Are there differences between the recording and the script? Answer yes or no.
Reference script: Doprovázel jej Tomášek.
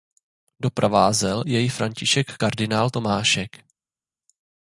yes